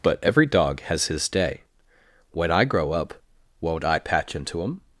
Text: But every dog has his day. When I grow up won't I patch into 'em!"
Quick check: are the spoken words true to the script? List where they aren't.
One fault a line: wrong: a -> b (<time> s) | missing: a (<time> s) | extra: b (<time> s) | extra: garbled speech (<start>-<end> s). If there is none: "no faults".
no faults